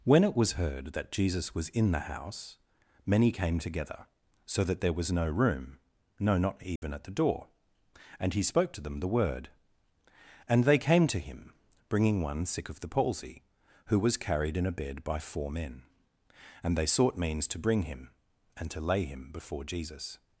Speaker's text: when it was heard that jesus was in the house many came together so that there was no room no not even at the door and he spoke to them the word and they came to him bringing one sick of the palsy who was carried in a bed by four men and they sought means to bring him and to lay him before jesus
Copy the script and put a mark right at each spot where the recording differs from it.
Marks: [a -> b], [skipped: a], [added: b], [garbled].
when it was heard that jesus was in the house many came together so that there was no room no not even at the door and he spoke to them the word and they came to him bringing one sick of the palsy who was carried in a bed by four men and they sought means to bring him and to lay him before jesus